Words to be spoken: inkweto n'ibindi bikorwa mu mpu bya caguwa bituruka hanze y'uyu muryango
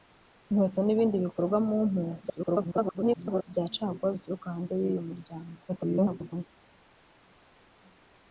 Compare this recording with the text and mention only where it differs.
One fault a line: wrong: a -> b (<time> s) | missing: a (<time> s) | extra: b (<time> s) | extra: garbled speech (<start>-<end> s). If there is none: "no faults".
extra: garbled speech (2.2-3.4 s)
extra: garbled speech (5.7-6.5 s)